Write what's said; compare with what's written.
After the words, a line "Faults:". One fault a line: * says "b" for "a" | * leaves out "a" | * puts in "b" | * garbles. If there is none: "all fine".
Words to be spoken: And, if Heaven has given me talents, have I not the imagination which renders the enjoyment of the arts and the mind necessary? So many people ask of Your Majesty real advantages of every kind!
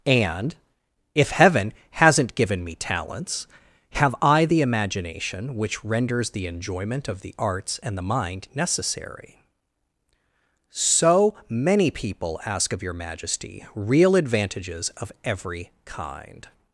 And, if Heaven hasn't given me talents, have I the imagination which renders the enjoyment of the arts and the mind necessary? So many people ask of Your Majesty real advantages of every kind!
Faults:
* says "hasn't" for "has"
* leaves out "not"